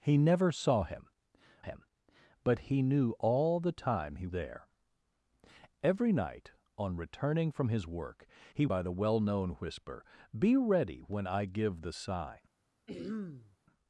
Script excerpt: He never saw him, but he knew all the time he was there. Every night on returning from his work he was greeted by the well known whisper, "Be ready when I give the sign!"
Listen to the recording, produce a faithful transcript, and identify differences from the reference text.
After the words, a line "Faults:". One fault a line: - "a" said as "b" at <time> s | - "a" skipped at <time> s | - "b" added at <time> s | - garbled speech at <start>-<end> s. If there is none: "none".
He never saw him him, but he knew all the time he there. Every night on returning from his work he by the well known whisper, "Be ready when I give the sign!"
Faults:
- "him" added at 1.6 s
- "was" skipped at 4.3 s
- "was greeted" skipped at 8.7 s